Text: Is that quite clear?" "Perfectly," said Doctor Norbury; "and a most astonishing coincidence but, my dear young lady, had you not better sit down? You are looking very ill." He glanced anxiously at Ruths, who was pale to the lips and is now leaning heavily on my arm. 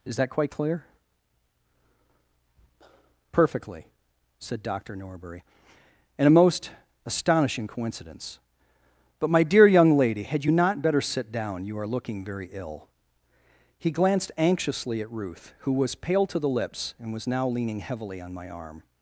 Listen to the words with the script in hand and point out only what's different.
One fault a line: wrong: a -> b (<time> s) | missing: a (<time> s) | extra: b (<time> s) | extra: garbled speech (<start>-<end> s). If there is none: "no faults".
wrong: Ruths -> Ruth (15.1 s)
wrong: is -> was (17.1 s)